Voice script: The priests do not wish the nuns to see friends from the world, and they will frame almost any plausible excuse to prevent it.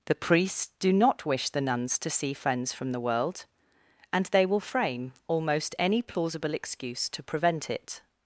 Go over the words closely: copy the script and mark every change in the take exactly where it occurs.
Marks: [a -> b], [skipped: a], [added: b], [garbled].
The priests do not wish the nuns to see friends from the world, and they will frame almost any plausible excuse to prevent it.